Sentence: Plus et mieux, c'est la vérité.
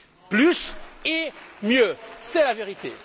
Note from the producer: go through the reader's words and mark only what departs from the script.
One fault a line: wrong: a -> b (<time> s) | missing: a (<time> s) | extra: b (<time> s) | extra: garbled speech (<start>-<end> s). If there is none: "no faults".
no faults